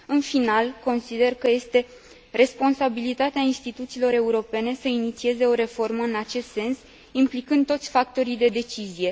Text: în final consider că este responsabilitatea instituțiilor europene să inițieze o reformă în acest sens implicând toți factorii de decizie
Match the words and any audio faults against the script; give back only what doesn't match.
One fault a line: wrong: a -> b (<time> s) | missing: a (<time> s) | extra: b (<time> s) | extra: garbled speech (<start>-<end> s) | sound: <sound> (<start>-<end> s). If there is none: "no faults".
no faults